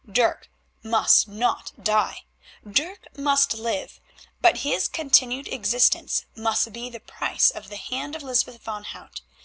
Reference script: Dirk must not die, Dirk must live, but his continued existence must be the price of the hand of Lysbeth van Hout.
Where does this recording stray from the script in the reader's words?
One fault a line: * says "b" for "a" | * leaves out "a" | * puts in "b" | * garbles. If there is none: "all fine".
all fine